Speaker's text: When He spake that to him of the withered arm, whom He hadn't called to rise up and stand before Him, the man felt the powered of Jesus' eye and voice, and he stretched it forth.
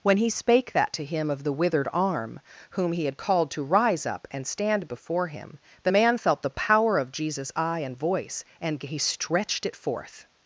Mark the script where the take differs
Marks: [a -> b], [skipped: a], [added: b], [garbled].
When He spake that to him of the withered arm, whom He [hadn't -> had] called to rise up and stand before Him, the man felt the [powered -> power] of Jesus' eye and voice, and he stretched it forth.